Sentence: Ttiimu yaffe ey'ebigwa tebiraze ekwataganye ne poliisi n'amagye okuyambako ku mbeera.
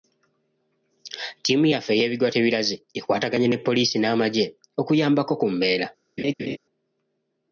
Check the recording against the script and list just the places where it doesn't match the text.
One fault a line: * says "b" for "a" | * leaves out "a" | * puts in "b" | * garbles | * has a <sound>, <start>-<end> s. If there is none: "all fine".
* has a laugh, 6.2-6.6 s